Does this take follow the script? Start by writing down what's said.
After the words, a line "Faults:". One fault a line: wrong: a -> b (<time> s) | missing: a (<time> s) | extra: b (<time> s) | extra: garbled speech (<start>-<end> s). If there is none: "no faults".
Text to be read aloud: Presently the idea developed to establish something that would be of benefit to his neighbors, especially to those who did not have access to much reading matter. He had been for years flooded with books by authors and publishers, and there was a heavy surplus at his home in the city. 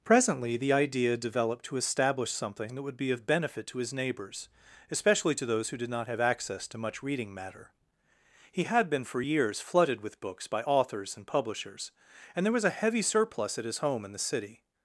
Presently the idea developed to establish something that would be of benefit to his neighbors, especially to those who did not have access to much reading matter. He had been for years flooded with books by authors and publishers, and there was a heavy surplus at his home in the city.
Faults:
no faults